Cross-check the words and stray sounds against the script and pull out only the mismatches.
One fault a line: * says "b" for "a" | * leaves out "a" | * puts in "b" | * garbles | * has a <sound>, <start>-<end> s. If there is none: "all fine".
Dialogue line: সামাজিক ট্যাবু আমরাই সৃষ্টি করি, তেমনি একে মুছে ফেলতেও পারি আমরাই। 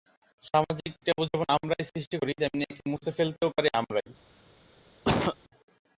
* puts in "যেমন"
* has a cough, 5.0-5.4 s